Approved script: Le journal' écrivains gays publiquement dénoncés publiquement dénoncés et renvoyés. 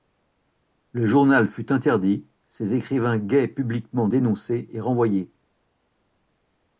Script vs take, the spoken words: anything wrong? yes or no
yes